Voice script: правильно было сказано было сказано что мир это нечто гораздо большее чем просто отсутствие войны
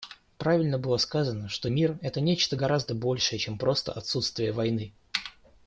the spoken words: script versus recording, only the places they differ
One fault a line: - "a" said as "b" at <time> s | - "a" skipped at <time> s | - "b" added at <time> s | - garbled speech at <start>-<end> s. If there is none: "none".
- "было сказано" skipped at 1.5 s